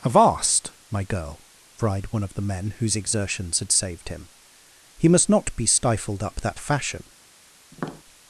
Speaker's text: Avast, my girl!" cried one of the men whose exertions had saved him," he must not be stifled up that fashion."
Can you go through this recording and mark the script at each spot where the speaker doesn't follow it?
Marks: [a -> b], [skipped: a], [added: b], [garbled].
Avast, my girl!" cried one of the men whose exertions had saved him," he must not be stifled up that fashion."